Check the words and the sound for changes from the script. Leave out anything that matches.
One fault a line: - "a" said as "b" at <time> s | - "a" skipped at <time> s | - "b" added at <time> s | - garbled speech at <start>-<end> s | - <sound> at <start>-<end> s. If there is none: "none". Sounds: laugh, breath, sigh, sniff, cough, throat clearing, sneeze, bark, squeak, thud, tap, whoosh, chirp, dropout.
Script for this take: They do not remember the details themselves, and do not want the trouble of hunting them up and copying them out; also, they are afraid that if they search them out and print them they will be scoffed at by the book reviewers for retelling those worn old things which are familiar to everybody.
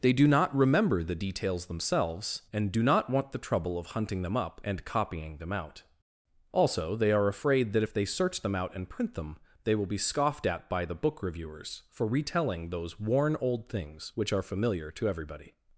none